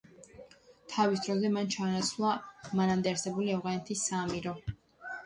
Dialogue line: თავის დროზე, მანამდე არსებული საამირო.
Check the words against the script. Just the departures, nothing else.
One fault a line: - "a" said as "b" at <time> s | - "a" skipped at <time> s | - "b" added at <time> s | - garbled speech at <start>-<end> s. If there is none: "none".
- "მან ჩაანაცვლა" added at 1.6 s
- "ავღანეთის" added at 3.6 s